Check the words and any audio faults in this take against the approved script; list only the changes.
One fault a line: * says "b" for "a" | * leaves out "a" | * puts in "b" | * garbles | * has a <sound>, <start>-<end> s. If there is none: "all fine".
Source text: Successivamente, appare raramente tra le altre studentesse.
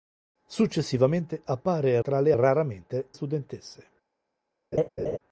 * leaves out "raramente"
* says "raramente" for "altre"
* has a laugh, 4.7-5.2 s